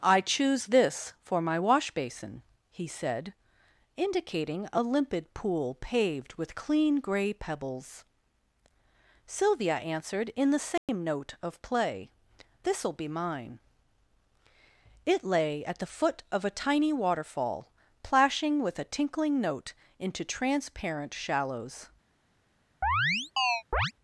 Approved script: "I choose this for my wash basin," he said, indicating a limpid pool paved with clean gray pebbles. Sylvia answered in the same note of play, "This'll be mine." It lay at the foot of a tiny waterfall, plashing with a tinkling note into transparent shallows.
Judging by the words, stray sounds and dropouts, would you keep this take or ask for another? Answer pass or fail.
fail